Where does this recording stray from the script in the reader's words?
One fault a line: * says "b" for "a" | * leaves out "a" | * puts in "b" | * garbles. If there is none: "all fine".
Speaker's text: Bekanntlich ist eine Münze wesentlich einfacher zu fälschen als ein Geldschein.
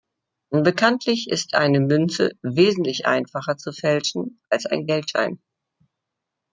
all fine